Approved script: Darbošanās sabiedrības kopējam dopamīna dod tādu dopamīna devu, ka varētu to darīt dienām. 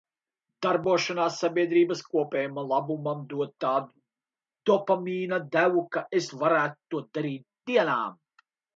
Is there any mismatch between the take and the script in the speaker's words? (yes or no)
yes